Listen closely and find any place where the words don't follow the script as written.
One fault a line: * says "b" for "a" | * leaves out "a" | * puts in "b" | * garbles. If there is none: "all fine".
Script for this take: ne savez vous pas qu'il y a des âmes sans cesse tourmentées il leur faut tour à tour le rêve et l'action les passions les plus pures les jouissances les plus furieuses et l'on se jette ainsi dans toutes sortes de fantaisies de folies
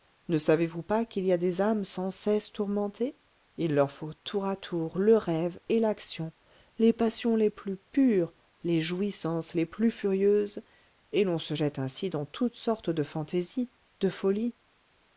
all fine